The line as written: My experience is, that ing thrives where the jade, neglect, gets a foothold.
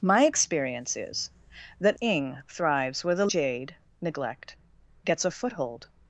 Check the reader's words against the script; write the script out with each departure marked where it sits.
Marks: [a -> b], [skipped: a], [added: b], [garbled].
My experience is, that ing thrives where the jade, neglect, gets a foothold.